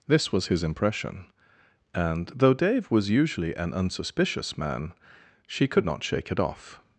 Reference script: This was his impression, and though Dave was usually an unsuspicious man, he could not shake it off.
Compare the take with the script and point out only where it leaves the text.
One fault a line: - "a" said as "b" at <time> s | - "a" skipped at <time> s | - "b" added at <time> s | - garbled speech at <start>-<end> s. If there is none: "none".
- "he" said as "she" at 5.5 s